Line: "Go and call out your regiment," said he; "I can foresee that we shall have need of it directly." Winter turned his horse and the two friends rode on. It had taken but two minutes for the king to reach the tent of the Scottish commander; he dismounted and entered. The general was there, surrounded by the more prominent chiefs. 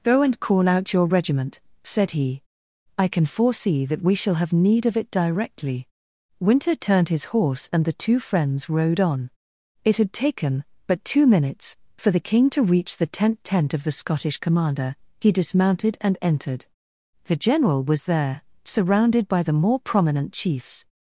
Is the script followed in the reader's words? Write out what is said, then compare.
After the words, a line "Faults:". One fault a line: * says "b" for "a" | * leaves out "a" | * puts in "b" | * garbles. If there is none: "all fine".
"Go and call out your regiment," said he; "I can foresee that we shall have need of it directly." Winter turned his horse and the two friends rode on. It had taken but two minutes for the king to reach the tent tent of the Scottish commander; he dismounted and entered. The general was there, surrounded by the more prominent chiefs.
Faults:
* puts in "tent"